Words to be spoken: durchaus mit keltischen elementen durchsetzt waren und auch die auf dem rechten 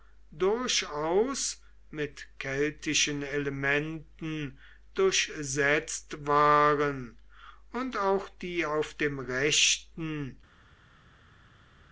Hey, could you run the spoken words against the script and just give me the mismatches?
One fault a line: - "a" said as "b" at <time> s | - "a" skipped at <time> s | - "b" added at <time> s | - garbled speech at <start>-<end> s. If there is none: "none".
none